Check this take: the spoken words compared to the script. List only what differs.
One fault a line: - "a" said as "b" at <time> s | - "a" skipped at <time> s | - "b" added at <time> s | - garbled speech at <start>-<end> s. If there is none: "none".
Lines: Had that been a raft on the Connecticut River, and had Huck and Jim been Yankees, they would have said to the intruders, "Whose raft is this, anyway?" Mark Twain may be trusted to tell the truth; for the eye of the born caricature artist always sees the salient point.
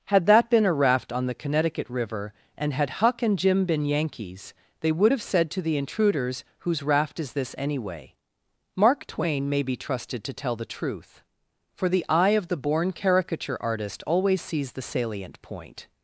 none